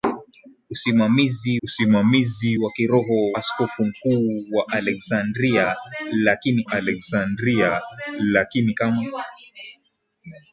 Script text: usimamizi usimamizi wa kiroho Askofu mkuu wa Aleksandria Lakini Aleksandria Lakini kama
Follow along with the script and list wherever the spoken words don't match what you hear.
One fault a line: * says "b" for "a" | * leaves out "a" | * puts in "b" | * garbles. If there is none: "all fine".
all fine